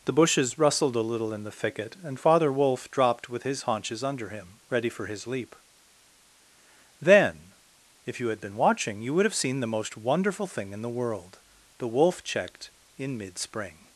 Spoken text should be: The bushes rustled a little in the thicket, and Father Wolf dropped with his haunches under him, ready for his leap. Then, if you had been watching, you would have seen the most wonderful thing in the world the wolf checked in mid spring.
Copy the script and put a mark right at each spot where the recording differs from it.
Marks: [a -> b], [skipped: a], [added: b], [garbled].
The bushes rustled a little in the thicket, and Father Wolf dropped with his haunches under him, ready for his leap. Then, if you had been watching, you would have seen the most wonderful thing in the world the wolf checked in mid spring.